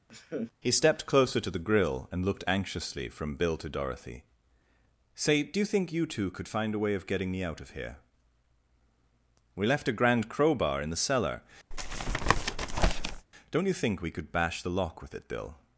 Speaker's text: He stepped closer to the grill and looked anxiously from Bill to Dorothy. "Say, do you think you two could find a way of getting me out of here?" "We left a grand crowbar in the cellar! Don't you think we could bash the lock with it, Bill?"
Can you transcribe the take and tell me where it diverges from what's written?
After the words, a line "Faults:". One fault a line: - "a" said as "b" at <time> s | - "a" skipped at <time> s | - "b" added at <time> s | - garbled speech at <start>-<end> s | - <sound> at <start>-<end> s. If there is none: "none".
He stepped closer to the grill and looked anxiously from Bill to Dorothy. "Say, do you think you two could find a way of getting me out of here?" "We left a grand crowbar in the cellar! Don't you think we could bash the lock with it, Bill?"
Faults:
- laugh at 0.1-0.5 s
- tap at 11.7-13.3 s